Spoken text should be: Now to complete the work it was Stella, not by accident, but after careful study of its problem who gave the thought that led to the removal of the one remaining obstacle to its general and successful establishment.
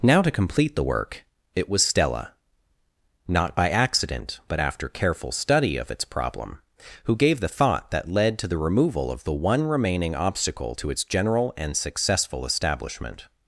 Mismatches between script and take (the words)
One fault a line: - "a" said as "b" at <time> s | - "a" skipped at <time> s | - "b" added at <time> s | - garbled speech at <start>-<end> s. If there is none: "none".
none